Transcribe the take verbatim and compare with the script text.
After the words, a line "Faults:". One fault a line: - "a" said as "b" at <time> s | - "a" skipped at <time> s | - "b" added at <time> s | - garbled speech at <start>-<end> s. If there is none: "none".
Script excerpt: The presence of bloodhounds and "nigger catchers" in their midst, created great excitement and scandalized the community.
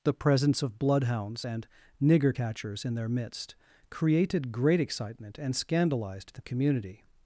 The presence of bloodhounds and "nigger catchers" in their midst, created great excitement and scandalized the community.
Faults:
none